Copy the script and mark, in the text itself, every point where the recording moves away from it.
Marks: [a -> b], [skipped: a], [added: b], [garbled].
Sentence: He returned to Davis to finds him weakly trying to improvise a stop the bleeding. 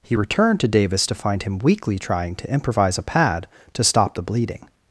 He returned to Davis to [finds -> find] him weakly trying to improvise a [added: pad to] stop the bleeding.